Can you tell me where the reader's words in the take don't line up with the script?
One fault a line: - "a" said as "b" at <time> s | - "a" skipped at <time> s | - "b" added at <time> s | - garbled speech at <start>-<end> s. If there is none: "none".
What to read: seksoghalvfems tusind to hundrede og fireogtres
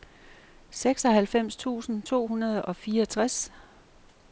none